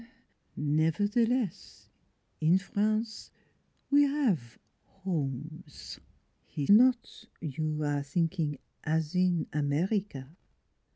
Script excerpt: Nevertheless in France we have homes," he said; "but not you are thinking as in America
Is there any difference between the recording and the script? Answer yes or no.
yes